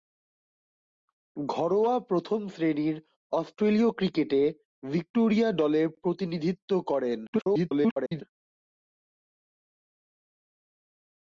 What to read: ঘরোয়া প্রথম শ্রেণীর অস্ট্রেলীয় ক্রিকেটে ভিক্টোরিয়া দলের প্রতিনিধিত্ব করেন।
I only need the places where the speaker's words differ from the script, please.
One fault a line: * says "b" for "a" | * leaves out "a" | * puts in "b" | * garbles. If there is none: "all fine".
* garbles